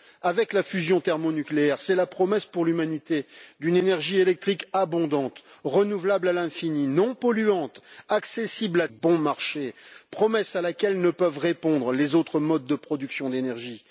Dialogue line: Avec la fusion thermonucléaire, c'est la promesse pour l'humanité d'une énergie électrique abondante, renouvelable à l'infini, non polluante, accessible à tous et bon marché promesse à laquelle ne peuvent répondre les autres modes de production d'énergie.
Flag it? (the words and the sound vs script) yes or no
yes